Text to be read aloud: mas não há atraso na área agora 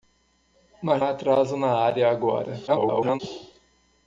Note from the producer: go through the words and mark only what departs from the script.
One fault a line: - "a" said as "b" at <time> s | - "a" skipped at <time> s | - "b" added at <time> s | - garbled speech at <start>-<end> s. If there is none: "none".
- "não" skipped at 1.0 s
- garbled speech at 2.7-3.2 s